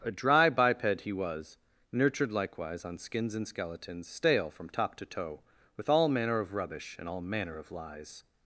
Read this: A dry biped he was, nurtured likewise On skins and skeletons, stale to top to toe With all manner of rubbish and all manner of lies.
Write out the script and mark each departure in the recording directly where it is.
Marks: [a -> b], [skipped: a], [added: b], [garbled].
A dry biped he was, nurtured likewise On skins and skeletons, stale [to -> from] top to toe With all manner of rubbish and all manner of lies.